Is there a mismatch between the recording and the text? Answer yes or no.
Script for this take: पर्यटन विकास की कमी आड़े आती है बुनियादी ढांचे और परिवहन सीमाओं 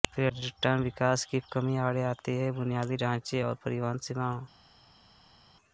no